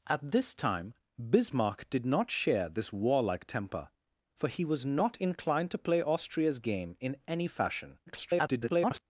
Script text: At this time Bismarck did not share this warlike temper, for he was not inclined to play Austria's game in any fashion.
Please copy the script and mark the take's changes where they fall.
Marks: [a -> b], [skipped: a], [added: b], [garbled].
At this time Bismarck did not share this warlike temper, for he was not inclined to play Austria's game in any fashion. [garbled]